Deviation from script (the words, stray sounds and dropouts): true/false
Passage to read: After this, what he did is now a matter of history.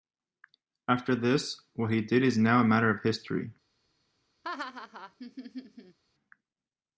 true